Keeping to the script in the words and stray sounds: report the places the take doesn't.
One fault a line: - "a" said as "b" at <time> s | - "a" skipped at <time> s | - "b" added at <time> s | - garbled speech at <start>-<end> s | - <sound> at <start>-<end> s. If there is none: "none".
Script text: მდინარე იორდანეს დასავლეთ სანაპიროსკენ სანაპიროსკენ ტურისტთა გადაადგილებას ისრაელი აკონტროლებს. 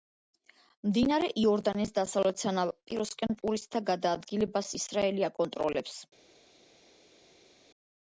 - "სანაპიროსკენ" skipped at 3.4 s